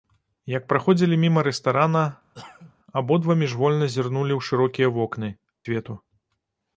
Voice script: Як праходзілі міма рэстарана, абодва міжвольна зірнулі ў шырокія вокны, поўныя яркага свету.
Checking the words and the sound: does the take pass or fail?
fail